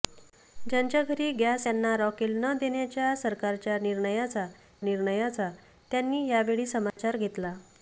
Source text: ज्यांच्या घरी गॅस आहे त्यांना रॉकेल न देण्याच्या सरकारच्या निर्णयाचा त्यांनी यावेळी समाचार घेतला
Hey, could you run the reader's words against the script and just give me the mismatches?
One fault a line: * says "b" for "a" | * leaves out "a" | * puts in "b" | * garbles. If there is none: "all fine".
* leaves out "आहे"
* puts in "निर्णयाचा"